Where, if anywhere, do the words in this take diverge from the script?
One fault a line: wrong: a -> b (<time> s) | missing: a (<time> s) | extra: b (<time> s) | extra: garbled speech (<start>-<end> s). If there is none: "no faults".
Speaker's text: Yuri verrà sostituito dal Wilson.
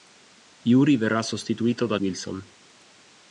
no faults